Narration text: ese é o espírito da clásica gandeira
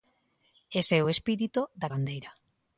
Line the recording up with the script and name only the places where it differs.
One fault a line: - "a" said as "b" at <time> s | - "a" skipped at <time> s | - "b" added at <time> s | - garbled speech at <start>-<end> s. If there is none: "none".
- "clásica" skipped at 1.9 s